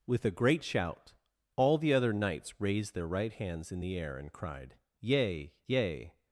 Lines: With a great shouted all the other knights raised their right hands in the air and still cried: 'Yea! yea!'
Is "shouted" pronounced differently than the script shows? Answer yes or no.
yes